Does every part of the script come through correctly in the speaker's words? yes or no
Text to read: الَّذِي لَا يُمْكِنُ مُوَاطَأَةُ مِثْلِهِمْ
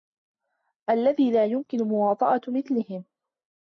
yes